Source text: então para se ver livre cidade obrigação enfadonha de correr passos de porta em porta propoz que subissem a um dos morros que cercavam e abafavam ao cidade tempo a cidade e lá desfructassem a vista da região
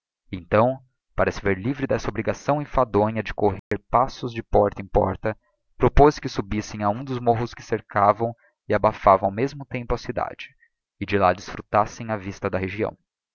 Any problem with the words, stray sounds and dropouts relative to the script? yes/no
yes